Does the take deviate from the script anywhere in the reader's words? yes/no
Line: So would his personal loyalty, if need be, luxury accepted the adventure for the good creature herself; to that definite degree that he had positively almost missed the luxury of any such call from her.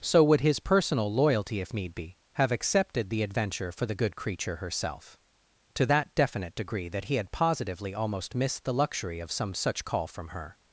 yes